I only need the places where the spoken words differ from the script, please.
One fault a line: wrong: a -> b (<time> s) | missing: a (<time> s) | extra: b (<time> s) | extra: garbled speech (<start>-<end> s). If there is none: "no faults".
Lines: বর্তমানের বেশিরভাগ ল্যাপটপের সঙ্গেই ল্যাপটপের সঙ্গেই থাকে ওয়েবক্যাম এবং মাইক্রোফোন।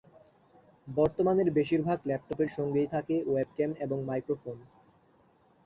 missing: ল্যাপটপের সঙ্গেই (2.9 s)